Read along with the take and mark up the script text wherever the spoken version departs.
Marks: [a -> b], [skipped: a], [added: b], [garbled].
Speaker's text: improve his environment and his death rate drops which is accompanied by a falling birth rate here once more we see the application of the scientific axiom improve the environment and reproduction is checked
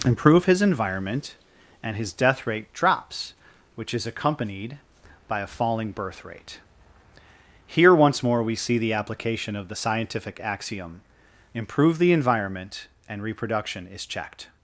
improve his environment and his death rate drops which is accompanied by a falling birth rate here once more we see the application of the scientific axiom improve the environment and reproduction is checked